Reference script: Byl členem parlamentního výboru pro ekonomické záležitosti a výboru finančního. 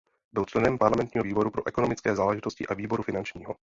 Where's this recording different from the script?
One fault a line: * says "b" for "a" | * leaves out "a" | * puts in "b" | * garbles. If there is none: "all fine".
all fine